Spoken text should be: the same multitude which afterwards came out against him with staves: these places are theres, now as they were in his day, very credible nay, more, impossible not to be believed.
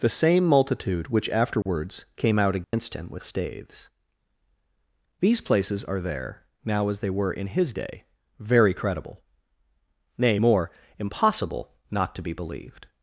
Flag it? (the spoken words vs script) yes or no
yes